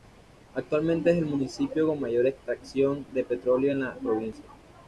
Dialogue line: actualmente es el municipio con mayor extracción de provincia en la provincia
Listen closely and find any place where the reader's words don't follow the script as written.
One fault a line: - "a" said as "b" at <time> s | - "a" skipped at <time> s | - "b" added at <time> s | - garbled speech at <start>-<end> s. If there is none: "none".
- "provincia" said as "petróleo" at 3.2 s